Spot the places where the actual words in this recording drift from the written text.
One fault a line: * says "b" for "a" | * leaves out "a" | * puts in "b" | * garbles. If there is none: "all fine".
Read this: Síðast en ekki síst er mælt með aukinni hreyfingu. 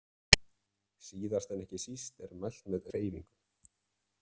* leaves out "aukinni"